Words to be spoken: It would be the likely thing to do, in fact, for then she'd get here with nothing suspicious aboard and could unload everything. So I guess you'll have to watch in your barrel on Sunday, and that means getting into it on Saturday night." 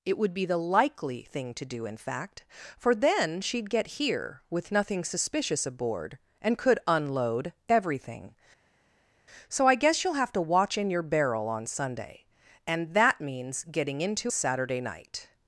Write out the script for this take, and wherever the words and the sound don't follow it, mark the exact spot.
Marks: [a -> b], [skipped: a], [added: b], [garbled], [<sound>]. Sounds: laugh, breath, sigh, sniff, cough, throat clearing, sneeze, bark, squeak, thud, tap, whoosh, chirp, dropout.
It would be the likely thing to do, in fact, for then she'd get here with nothing suspicious aboard and could unload everything. So I guess you'll have to watch in your barrel on Sunday, and that means getting into [skipped: it on] Saturday night."